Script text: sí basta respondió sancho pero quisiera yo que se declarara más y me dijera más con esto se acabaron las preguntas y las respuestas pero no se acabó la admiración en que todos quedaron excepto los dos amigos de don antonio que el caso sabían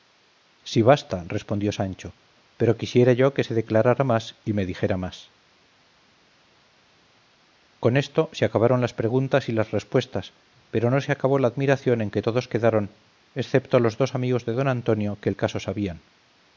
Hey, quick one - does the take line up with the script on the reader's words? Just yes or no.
yes